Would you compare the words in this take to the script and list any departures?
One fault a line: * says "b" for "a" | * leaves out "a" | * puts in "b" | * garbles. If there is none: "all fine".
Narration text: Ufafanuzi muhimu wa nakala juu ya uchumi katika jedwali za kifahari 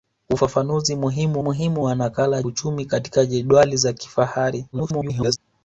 * puts in "muhimu"
* leaves out "juu ya"
* garbles